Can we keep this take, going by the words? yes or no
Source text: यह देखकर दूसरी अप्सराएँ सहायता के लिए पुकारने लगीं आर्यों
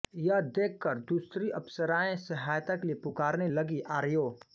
yes